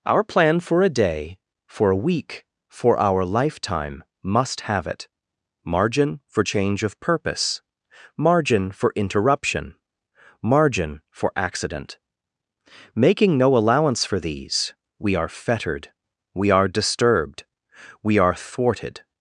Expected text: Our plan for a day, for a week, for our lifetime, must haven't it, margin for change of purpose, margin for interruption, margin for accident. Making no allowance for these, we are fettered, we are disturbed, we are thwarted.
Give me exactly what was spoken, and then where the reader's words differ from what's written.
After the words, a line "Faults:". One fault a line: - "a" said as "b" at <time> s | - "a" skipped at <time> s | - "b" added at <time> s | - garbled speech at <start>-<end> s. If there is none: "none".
Our plan for a day, for a week, for our lifetime, must have it, margin for change of purpose, margin for interruption, margin for accident. Making no allowance for these, we are fettered, we are disturbed, we are thwarted.
Faults:
- "haven't" said as "have" at 4.6 s